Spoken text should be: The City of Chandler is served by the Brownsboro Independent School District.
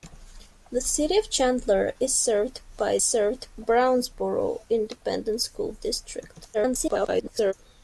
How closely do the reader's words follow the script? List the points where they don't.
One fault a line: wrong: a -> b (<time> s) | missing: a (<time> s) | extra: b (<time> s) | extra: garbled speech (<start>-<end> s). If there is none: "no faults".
wrong: the -> served (3.0 s)
extra: garbled speech (6.5-7.5 s)